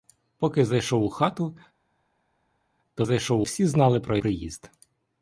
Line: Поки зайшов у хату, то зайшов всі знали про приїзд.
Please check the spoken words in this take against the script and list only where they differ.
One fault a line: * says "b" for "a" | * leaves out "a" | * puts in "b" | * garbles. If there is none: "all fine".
all fine